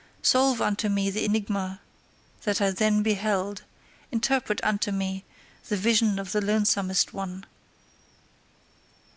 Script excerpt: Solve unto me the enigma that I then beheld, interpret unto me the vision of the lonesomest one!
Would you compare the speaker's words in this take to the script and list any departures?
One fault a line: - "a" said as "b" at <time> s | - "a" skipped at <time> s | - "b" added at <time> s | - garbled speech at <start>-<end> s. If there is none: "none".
none